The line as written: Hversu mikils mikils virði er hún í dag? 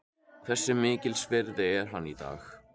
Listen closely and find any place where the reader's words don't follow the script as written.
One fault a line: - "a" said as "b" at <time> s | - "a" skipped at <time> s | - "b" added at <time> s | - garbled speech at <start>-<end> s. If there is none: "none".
- "mikils" skipped at 1.3 s
- "hún" said as "hann" at 1.9 s